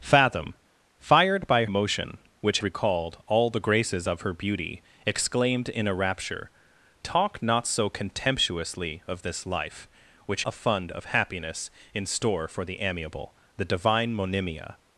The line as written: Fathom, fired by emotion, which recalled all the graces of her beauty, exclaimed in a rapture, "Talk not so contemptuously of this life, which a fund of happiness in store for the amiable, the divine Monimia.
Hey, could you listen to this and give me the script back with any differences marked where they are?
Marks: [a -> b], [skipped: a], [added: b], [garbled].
Fathom, fired by emotion, which recalled all the graces of her beauty, exclaimed in a rapture, "Talk not so contemptuously of this life, which a fund of happiness in store for the amiable, the divine Monimia.